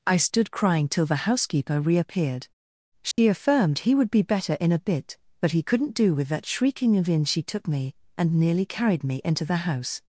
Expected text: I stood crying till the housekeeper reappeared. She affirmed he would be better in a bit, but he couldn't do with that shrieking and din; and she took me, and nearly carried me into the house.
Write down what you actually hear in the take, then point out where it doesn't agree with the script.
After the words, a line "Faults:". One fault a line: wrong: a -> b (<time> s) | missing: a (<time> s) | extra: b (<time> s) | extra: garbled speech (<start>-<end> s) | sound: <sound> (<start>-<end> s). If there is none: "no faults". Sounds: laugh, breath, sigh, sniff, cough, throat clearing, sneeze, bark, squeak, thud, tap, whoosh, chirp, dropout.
I stood crying till the housekeeper reappeared. She affirmed he would be better in a bit, but he couldn't do with that shrieking of in she took me, and nearly carried me into the house.
Faults:
sound: dropout (3.1-3.2 s)
wrong: and din and -> of in (7.0 s)